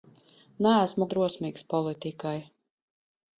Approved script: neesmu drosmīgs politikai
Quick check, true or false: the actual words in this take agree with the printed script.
true